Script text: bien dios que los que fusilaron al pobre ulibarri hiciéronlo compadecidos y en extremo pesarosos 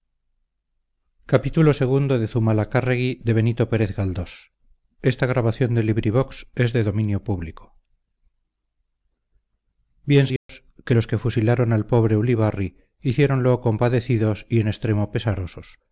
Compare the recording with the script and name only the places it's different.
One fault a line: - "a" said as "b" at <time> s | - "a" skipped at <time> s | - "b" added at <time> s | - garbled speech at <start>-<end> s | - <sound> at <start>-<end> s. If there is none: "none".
- dropout at 10.4-10.5 s